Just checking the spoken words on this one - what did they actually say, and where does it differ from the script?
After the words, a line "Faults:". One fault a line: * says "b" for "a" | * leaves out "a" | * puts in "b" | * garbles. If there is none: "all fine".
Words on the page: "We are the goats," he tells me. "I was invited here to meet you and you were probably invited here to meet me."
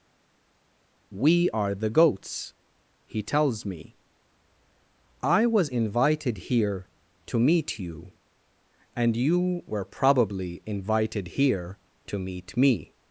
"We are the goats," he tells me. "I was invited here to meet you and you were probably invited here to meet me."
Faults:
all fine